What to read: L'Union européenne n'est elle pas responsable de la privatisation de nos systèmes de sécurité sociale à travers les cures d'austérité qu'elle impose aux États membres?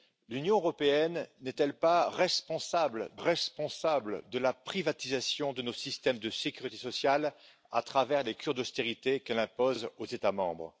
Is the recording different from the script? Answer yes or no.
yes